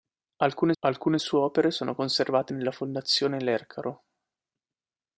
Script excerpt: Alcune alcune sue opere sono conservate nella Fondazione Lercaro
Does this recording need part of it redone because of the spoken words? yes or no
no